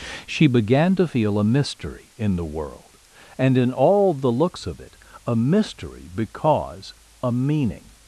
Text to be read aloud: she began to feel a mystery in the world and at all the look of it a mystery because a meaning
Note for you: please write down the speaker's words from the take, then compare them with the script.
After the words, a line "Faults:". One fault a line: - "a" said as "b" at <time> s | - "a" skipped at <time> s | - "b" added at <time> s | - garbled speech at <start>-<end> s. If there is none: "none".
she began to feel a mystery in the world and in all the looks of it a mystery because a meaning
Faults:
- "at" said as "in" at 3.6 s
- "look" said as "looks" at 4.3 s